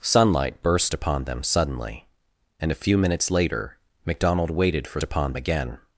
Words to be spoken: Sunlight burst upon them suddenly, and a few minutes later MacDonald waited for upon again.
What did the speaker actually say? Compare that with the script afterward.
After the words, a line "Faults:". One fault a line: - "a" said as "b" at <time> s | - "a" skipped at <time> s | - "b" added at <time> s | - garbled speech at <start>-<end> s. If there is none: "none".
Sunlight burst upon them suddenly, and a few minutes later MacDonald waited for upon again.
Faults:
none